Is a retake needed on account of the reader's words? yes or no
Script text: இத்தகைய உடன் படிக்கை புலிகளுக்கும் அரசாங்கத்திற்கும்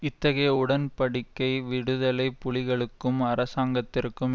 yes